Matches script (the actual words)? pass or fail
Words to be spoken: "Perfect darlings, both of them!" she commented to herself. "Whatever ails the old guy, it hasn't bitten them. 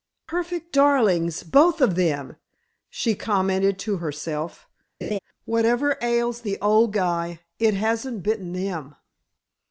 pass